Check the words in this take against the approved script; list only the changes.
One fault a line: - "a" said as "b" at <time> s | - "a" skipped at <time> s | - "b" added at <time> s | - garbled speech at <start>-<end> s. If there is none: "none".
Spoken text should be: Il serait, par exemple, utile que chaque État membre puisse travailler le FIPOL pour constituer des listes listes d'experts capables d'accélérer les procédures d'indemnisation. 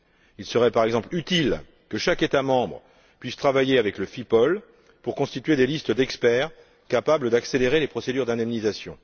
- "avec" added at 3.8 s
- "listes" skipped at 5.9 s